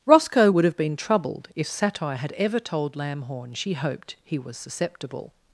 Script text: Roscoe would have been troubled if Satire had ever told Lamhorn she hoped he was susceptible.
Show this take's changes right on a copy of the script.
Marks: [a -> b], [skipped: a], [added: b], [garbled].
Roscoe would have been troubled if Satire had ever told Lamhorn she hoped he was susceptible.